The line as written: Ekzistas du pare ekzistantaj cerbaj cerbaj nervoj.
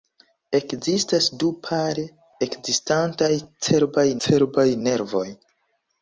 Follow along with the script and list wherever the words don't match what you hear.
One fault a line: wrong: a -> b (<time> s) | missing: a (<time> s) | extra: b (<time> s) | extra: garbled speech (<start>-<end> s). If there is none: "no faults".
no faults